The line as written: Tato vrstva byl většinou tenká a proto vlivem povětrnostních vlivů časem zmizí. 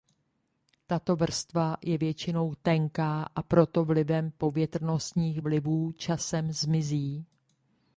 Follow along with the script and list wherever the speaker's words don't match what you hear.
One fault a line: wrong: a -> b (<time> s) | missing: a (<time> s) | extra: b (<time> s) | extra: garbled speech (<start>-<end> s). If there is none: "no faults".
wrong: byl -> je (1.8 s)